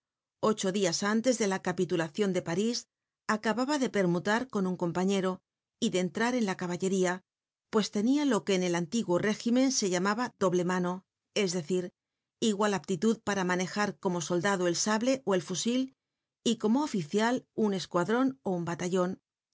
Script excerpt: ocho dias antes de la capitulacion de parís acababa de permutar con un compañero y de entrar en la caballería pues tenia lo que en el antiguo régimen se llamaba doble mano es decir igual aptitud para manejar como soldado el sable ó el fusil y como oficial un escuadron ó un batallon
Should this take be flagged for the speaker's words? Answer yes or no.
no